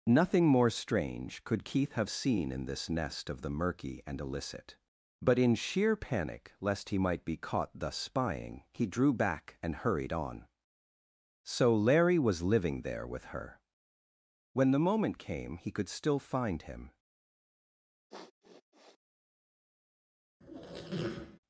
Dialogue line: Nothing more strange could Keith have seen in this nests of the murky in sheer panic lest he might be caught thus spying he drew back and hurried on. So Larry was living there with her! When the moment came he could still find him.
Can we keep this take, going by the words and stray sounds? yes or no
no